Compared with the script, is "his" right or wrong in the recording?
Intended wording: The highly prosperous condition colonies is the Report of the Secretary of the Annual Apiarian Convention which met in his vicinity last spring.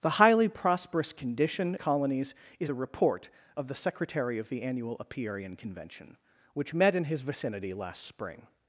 right